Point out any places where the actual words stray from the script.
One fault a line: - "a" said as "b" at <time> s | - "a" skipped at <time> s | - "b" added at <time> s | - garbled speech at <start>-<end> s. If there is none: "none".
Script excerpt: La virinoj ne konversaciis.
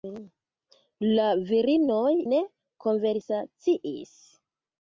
none